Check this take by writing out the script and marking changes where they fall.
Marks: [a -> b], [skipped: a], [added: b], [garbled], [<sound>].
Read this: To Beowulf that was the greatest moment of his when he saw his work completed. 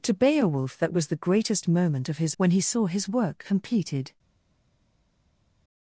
To Beowulf that was the greatest moment of his when he saw his work completed.